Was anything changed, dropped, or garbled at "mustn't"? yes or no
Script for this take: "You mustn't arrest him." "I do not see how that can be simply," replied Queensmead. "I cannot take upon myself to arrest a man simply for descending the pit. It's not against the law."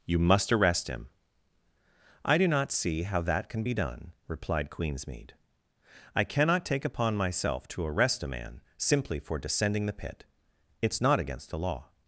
yes